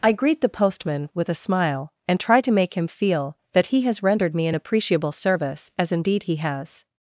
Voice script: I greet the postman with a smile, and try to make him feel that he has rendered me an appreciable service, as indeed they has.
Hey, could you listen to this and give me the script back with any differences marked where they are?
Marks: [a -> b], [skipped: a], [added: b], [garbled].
I greet the postman with a smile, and try to make him feel that he has rendered me an appreciable service, as indeed [they -> he] has.